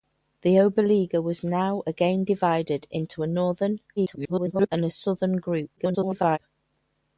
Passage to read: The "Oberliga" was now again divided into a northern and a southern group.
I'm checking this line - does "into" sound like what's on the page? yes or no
yes